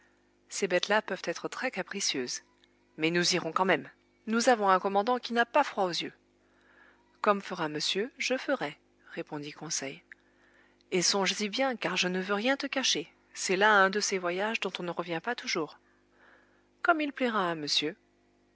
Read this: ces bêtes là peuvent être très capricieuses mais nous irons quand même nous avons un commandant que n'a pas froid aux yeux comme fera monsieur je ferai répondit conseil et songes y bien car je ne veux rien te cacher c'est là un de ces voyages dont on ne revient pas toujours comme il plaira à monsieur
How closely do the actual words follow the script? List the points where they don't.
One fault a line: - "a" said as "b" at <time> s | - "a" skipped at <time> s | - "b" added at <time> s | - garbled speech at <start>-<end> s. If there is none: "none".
- "que" said as "qui" at 5.2 s